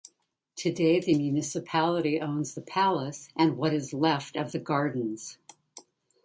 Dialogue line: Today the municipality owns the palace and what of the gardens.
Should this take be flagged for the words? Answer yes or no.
yes